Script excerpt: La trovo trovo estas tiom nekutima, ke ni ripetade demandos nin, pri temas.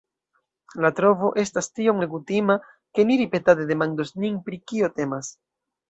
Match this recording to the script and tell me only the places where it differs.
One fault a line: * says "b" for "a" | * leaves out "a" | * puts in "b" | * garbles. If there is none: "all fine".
* leaves out "trovo"
* puts in "kio"